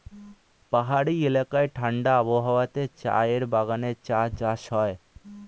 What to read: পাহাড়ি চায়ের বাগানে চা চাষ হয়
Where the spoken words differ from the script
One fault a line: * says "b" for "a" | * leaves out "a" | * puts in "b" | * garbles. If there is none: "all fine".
* puts in "এলাকায় ঠাণ্ডা আবহাওয়াতে"